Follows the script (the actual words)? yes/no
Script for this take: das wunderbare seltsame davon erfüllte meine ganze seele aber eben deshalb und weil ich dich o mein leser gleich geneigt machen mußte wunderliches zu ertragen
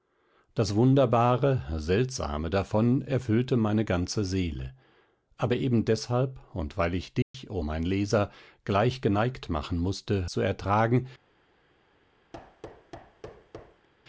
no